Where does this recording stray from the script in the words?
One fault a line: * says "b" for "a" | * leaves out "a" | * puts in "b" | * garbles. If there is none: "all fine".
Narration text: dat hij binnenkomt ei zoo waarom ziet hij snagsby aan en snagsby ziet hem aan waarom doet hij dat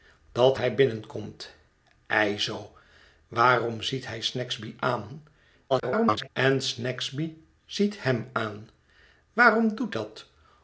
* garbles
* leaves out "hij"